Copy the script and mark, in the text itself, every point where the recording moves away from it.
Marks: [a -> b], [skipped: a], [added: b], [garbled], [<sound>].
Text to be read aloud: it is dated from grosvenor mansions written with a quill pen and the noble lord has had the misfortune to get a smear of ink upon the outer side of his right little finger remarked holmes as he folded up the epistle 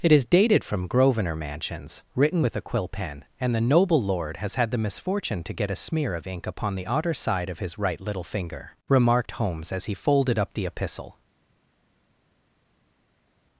it is dated from grosvenor mansions written with a quill pen and the noble lord has had the misfortune to get a smear of ink upon the outer side of his right little finger remarked holmes as he folded up the epistle